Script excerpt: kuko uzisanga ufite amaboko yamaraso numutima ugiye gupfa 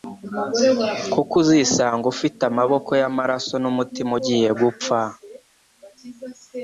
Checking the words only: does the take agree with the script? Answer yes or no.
yes